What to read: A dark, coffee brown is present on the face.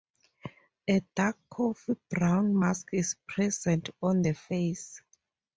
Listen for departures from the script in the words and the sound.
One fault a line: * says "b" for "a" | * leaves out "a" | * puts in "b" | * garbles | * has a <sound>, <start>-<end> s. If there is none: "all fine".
* puts in "mask"